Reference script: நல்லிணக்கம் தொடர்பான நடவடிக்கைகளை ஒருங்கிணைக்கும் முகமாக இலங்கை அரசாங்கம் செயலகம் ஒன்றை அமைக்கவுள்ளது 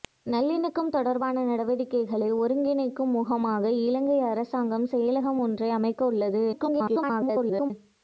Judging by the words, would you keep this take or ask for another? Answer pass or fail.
fail